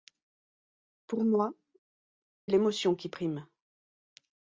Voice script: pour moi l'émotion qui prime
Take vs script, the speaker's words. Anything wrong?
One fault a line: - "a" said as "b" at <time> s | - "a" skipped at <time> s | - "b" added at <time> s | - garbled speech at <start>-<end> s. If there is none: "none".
none